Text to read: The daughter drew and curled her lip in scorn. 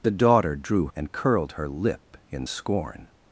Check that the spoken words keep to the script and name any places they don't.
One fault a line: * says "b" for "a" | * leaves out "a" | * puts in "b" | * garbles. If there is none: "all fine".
all fine